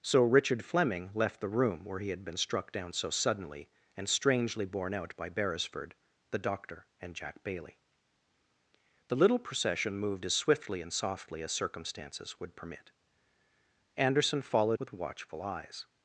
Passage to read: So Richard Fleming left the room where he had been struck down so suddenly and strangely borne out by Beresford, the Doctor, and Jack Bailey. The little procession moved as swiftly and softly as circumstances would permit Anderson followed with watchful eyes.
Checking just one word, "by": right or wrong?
right